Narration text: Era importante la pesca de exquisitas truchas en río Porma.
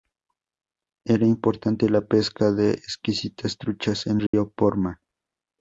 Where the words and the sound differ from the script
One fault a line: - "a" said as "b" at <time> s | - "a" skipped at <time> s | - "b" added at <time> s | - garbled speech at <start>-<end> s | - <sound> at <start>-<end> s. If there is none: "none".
- dropout at 4.3-4.3 s